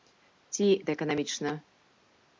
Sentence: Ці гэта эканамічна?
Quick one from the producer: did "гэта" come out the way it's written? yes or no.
yes